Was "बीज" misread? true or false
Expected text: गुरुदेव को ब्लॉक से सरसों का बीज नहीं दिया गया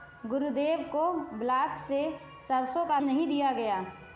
true